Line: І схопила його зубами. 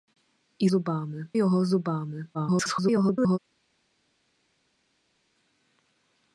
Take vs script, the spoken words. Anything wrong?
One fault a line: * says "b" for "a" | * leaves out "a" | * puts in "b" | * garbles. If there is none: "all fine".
* says "зубами" for "схопила"
* garbles